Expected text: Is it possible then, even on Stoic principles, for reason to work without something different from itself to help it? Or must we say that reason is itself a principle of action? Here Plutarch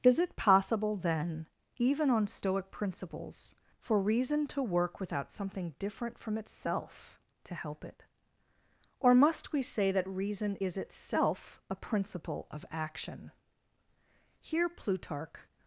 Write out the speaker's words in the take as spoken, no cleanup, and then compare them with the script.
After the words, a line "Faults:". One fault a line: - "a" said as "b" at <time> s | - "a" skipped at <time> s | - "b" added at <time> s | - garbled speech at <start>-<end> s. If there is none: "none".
Is it possible then, even on Stoic principles, for reason to work without something different from itself to help it? Or must we say that reason is itself a principle of action? Here Plutarch
Faults:
none